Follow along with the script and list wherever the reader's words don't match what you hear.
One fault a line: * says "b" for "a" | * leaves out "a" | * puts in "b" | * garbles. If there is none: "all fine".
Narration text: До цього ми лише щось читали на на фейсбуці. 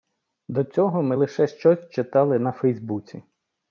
* leaves out "на"